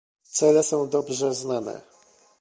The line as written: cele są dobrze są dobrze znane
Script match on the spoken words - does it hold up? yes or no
no